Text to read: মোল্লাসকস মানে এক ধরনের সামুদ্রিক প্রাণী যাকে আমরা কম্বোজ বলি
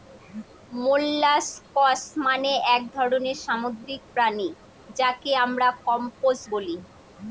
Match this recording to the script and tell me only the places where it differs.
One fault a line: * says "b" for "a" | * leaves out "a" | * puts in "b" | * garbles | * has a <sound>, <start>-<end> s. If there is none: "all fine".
all fine